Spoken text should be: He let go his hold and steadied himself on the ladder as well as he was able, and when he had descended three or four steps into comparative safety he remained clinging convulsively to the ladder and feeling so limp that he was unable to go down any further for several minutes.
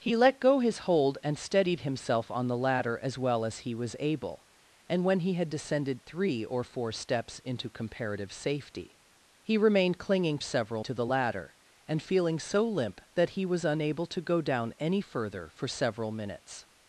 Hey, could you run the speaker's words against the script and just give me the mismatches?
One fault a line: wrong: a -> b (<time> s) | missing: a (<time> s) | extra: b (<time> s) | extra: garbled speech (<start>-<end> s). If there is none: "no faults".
wrong: convulsively -> several (10.4 s)